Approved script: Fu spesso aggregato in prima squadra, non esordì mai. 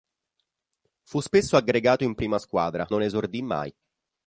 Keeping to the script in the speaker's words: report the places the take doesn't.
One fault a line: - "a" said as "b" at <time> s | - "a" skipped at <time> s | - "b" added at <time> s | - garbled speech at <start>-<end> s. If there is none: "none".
none